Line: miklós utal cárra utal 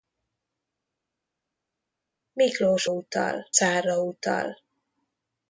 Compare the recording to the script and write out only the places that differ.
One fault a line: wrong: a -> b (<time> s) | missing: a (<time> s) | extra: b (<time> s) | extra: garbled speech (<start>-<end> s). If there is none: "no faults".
no faults